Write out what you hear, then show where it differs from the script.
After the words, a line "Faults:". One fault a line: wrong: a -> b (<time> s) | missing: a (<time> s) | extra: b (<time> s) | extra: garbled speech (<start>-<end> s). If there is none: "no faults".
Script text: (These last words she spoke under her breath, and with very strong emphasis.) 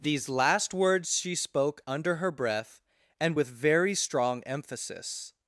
(These last words she spoke under her breath, and with very strong emphasis.)
Faults:
no faults